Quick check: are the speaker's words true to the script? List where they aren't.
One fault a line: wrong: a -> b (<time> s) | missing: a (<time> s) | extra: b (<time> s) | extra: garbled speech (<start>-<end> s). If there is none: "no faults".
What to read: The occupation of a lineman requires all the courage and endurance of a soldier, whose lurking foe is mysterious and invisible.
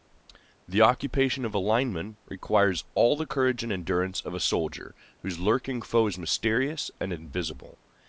no faults